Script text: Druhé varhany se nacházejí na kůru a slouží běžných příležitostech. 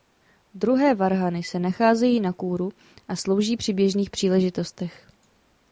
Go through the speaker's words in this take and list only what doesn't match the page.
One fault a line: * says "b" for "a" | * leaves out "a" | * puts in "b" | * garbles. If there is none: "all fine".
* puts in "při"